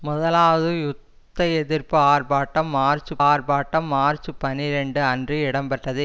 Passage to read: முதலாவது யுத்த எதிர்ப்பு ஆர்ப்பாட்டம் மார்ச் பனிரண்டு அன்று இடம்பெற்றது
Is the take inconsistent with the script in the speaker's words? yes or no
yes